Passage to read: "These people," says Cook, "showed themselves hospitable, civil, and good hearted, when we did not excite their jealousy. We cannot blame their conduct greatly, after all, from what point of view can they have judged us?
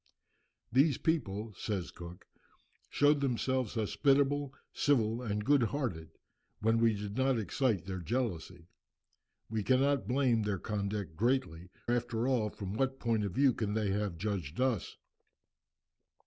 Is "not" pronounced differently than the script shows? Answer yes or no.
no